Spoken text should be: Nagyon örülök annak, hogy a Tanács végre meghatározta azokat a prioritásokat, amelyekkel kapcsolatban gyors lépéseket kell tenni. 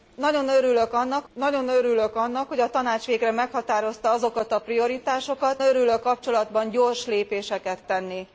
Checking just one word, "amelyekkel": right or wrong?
wrong